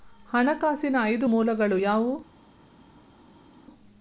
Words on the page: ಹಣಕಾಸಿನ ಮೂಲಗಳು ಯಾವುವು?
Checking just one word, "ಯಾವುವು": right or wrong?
right